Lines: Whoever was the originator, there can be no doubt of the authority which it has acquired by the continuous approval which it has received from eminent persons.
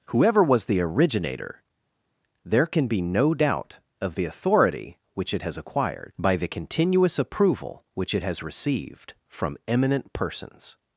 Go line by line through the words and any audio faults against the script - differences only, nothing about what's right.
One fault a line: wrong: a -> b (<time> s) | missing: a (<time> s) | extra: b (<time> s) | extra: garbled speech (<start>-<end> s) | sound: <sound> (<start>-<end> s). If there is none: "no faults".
no faults